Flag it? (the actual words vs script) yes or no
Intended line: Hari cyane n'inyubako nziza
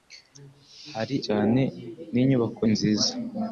no